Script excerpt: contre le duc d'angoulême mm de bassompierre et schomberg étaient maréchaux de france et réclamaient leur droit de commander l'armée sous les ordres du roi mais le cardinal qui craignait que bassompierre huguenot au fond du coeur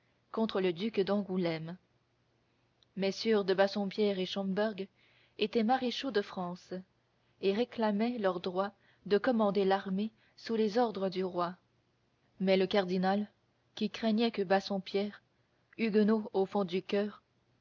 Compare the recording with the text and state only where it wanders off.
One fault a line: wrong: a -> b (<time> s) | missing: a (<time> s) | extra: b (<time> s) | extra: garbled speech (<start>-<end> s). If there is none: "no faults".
no faults